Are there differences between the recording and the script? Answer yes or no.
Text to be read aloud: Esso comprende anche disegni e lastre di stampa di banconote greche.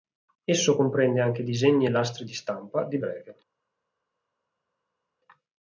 yes